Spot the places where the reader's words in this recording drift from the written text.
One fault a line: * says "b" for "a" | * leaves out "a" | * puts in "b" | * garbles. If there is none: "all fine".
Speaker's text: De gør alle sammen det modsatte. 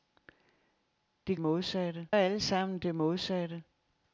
* says "modsatte" for "gør"